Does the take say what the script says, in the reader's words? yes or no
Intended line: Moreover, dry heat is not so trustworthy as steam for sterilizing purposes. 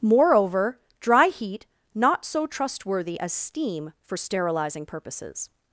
no